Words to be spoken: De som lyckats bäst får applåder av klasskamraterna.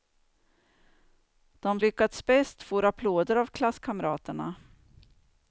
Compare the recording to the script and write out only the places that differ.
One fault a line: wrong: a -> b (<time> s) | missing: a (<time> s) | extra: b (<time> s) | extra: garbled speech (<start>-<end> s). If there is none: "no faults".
missing: som (1.8 s)